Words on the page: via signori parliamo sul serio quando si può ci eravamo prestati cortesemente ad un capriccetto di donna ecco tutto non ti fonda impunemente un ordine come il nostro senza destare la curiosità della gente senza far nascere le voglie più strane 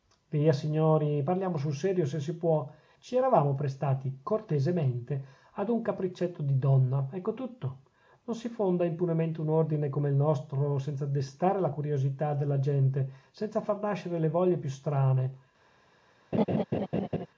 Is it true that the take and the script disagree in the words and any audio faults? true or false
true